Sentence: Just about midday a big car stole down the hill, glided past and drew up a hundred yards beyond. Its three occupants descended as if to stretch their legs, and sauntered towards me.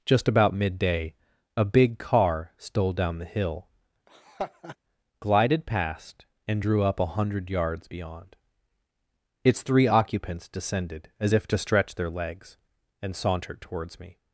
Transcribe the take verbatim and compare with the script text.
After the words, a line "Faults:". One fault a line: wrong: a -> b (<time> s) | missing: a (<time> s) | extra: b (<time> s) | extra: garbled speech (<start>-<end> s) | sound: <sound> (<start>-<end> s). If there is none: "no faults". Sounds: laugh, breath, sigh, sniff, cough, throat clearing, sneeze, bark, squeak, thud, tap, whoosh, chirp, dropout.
Just about midday a big car stole down the hill, glided past and drew up a hundred yards beyond. Its three occupants descended as if to stretch their legs, and sauntered towards me.
Faults:
sound: laugh (4.1-4.8 s)